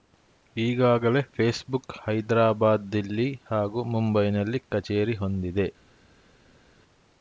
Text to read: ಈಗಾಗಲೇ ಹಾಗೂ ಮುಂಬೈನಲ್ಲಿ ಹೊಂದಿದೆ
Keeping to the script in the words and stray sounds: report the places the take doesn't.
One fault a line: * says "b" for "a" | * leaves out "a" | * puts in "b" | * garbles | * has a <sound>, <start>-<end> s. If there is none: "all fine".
* puts in "ಫೇಸ್‌ಬುಕ್ ಹೈದರಾಬಾದ್ ದಿಲ್ಲಿ"
* puts in "ಕಚೇರಿ"